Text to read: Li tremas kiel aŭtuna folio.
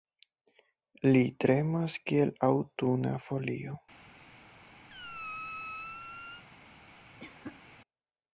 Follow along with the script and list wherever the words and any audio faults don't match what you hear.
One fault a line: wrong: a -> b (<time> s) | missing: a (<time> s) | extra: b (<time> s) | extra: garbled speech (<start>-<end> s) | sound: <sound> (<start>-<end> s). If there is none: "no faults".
sound: squeak (4.9-6.4 s)
sound: cough (7.2-7.6 s)